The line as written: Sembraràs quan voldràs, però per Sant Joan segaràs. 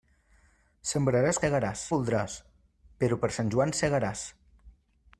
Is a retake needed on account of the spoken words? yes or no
yes